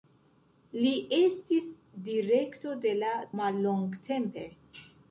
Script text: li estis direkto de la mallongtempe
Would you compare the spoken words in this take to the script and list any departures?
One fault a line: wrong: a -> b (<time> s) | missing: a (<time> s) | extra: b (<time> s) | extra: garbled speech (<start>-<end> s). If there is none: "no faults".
no faults